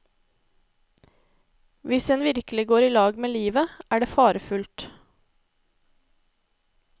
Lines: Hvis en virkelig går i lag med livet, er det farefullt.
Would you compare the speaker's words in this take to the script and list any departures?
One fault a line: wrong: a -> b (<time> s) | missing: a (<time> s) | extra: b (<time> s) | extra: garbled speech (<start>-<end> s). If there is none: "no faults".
no faults